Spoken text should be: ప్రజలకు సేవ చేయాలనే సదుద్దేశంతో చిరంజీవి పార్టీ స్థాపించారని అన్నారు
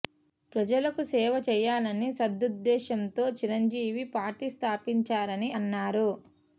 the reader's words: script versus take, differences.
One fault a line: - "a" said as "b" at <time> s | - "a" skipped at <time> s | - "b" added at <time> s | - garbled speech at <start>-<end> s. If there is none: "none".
none